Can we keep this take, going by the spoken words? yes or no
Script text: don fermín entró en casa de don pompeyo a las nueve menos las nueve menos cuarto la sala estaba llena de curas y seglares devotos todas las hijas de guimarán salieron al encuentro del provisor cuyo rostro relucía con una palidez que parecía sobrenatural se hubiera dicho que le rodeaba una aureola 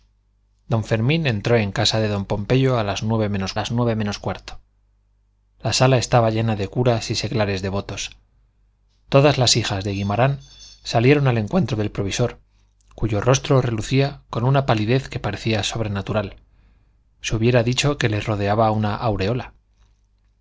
yes